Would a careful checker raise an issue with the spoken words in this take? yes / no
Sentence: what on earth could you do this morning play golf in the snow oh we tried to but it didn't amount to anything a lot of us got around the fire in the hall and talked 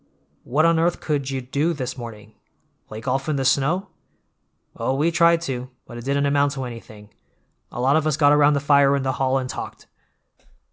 no